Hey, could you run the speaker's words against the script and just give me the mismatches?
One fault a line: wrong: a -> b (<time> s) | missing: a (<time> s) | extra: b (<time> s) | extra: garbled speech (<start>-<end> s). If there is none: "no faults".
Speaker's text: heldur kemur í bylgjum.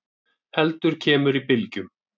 no faults